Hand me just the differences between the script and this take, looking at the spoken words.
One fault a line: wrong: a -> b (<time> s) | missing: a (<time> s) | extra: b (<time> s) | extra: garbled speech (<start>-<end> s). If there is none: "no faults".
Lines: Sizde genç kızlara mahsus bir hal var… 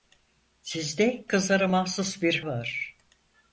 missing: genç (1.2 s)
missing: hal (2.4 s)